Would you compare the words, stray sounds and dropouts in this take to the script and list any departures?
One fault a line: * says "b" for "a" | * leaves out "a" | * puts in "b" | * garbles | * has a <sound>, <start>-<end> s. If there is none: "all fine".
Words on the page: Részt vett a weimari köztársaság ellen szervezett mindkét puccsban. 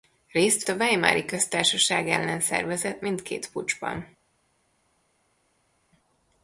* leaves out "vett"